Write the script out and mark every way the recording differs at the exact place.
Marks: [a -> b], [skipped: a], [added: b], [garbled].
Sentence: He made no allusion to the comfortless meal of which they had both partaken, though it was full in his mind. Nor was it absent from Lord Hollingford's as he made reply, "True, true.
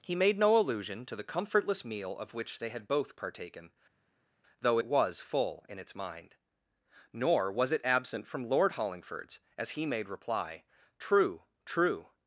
He made no allusion to the comfortless meal of which they had both partaken, though it was full in [his -> its] mind. Nor was it absent from Lord Hollingford's as he made reply, "True, true.